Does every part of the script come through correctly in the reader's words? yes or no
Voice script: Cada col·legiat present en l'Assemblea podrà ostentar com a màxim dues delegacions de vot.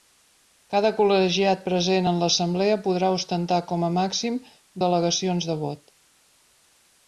no